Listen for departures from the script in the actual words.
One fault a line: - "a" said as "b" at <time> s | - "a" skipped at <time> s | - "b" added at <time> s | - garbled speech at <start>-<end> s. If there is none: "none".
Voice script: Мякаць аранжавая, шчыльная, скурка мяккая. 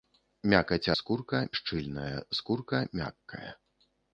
- "аранжавая" said as "скурка" at 1.0 s